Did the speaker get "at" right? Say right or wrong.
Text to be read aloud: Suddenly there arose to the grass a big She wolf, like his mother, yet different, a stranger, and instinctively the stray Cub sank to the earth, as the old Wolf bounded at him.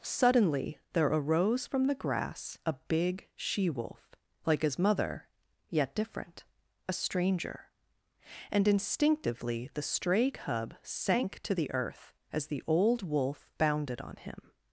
wrong